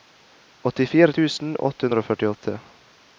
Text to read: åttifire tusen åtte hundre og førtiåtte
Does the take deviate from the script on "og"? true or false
false